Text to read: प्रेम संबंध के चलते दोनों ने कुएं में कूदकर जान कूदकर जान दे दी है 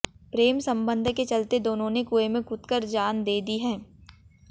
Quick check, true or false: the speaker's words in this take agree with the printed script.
false